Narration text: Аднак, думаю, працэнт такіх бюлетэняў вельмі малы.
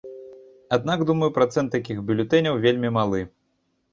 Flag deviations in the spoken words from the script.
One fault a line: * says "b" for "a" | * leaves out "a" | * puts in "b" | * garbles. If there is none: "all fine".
all fine